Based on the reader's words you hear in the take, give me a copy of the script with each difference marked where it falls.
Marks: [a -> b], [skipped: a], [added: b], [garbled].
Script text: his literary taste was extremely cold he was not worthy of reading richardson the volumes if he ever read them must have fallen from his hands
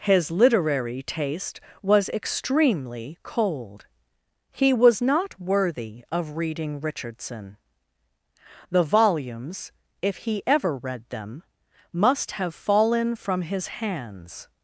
his literary taste was extremely cold he was not worthy of reading richardson the volumes if he ever read them must have fallen from his hands